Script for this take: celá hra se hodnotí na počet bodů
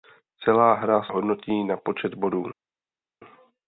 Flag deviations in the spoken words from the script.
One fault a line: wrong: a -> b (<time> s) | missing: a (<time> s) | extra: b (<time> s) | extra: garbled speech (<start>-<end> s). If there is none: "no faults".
missing: se (1.0 s)